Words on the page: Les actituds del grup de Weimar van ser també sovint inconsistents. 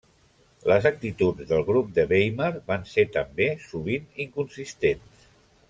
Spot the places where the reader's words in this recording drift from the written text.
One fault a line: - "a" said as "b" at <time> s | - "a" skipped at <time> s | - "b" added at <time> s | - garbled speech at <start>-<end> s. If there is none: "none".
none